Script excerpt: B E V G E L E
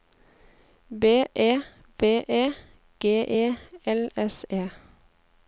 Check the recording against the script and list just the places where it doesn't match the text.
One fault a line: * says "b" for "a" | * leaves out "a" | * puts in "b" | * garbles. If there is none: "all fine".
* puts in "E"
* puts in "S"